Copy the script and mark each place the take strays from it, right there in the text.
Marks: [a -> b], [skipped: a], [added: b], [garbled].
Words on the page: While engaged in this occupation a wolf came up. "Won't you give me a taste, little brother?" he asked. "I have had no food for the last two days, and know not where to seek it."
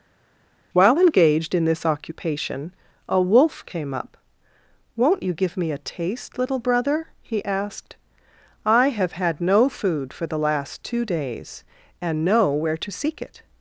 While engaged in this occupation a wolf came up. "Won't you give me a taste, little brother?" he asked. "I have had no food for the last two days, and know [skipped: not] where to seek it."